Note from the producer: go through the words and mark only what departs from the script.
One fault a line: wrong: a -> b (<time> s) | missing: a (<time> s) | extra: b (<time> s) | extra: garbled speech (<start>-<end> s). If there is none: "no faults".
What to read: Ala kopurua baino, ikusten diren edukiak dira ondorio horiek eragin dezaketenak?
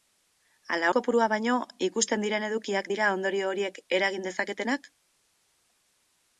no faults